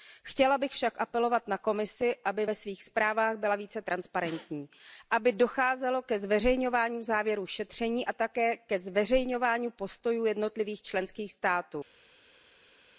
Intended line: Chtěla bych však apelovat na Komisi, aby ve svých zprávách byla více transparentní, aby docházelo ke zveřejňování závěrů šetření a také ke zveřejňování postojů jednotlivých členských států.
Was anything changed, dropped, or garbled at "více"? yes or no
no